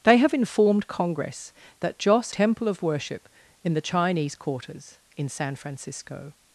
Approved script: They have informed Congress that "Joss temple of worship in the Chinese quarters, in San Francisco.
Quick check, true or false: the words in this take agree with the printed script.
true